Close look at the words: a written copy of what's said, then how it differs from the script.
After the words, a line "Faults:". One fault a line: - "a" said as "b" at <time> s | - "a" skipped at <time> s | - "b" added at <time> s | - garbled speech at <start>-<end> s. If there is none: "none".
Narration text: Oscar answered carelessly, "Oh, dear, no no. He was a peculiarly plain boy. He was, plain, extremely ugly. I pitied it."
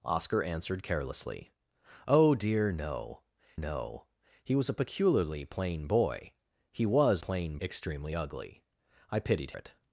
Oscar answered carelessly, "Oh, dear, no no. He was a peculiarly plain boy. He was, plain, extremely ugly. I pitied it."
Faults:
none